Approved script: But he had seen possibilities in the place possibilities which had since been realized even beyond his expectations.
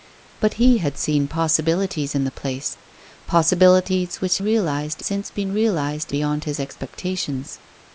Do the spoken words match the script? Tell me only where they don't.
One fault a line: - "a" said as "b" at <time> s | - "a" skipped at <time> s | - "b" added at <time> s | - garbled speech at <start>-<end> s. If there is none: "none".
- "had" said as "realized" at 4.4 s
- "even" skipped at 6.1 s